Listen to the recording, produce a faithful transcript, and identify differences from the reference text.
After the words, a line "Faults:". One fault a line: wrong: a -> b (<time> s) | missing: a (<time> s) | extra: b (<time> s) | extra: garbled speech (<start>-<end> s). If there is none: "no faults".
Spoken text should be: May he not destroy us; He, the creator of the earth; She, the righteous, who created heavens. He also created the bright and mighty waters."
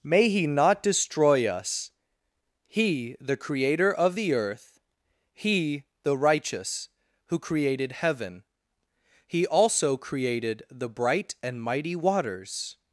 May he not destroy us; He, the creator of the earth; He, the righteous, who created heaven. He also created the bright and mighty waters."
Faults:
wrong: She -> He (5.3 s)
wrong: heavens -> heaven (7.9 s)